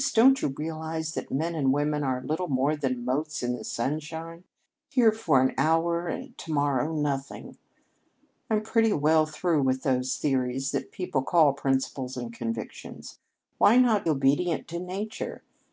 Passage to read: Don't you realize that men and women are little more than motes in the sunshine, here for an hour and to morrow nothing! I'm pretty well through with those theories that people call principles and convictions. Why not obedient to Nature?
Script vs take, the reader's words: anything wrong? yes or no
no